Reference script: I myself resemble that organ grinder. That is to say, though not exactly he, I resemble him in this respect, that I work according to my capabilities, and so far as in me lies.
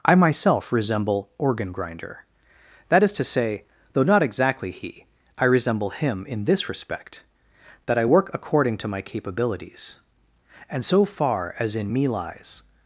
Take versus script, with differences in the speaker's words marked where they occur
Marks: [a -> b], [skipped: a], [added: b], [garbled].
I myself resemble [skipped: that] organ grinder. That is to say, though not exactly he, I resemble him in this respect, that I work according to my capabilities, and so far as in me lies.